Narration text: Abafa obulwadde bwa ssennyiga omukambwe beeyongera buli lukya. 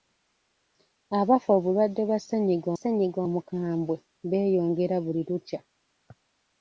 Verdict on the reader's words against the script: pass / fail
fail